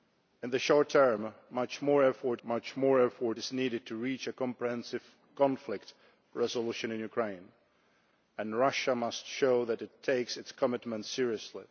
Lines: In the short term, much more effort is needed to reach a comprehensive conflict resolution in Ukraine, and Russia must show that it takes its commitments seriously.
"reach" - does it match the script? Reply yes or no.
yes